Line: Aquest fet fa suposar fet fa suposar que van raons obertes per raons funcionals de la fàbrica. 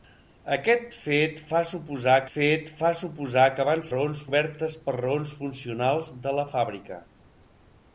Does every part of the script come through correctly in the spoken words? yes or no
yes